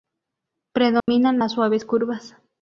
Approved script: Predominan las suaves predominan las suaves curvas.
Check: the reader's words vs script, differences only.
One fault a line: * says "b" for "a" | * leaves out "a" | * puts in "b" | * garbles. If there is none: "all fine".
* leaves out "predominan las suaves"